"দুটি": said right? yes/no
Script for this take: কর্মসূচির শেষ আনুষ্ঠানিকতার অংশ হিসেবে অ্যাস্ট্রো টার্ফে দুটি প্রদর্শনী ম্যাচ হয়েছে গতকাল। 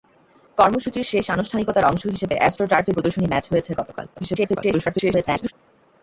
no